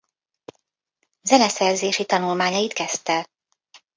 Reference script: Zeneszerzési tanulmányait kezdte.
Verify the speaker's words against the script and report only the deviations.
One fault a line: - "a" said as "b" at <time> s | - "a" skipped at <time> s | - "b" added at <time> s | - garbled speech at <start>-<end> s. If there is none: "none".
none